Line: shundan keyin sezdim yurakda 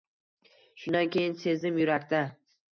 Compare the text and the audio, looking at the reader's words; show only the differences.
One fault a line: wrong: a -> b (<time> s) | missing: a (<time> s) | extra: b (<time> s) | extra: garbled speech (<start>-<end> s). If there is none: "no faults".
no faults